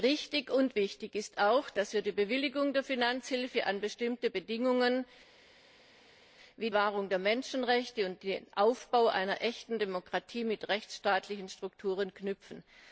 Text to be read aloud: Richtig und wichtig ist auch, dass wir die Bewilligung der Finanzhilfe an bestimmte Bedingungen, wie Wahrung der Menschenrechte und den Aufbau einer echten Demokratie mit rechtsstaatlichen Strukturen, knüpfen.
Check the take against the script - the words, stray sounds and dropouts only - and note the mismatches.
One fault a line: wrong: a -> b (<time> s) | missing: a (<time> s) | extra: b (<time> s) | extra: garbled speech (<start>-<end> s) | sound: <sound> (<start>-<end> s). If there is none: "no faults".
no faults